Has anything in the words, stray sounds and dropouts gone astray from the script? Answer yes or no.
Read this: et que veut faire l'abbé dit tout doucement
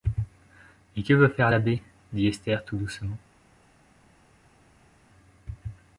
yes